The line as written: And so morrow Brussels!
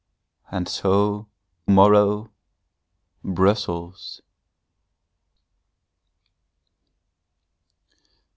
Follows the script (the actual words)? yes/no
yes